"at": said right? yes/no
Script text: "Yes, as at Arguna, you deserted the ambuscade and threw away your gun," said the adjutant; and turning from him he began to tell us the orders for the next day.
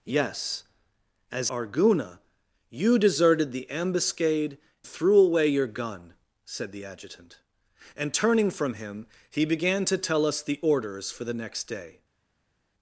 no